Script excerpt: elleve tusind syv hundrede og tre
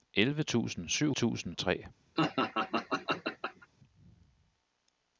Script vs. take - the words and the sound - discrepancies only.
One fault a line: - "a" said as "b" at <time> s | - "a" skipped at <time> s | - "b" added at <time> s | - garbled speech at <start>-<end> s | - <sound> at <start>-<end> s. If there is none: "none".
- "hundrede" said as "tusind" at 1.1 s
- laugh at 2.2-3.7 s